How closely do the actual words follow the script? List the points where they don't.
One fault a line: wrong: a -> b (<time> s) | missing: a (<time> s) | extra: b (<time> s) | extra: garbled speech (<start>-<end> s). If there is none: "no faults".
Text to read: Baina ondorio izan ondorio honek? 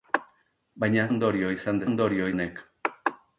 no faults